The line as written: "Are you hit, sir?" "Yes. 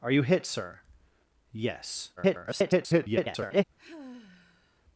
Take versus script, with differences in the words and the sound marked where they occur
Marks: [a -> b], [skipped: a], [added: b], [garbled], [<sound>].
"Are you hit, sir?" "Yes. [garbled] [sigh]